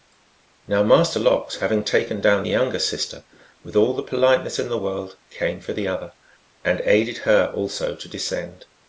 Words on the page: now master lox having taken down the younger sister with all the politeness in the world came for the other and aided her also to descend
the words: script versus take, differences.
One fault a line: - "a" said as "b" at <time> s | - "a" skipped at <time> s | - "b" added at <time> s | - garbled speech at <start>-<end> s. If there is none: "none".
none